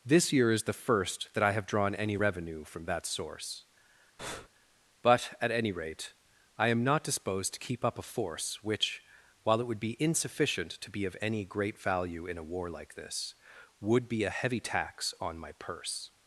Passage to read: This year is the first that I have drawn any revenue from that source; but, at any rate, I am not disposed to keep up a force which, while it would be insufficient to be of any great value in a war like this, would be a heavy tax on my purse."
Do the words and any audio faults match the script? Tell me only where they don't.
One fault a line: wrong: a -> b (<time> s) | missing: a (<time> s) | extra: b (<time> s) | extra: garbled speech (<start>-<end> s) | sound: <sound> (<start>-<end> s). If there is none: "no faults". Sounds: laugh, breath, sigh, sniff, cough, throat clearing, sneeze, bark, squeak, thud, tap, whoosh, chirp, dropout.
sound: breath (4.2-4.5 s)